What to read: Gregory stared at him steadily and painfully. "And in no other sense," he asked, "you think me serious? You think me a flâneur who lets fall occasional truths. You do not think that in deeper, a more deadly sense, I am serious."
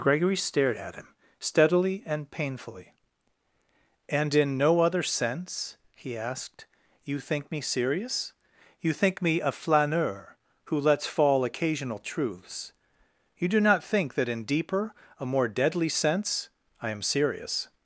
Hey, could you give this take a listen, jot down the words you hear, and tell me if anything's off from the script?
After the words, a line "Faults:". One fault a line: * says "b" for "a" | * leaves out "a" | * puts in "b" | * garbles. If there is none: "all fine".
Gregory stared at him steadily and painfully. "And in no other sense," he asked, "you think me serious? You think me a flâneur who lets fall occasional truths. You do not think that in deeper, a more deadly sense, I am serious."
Faults:
all fine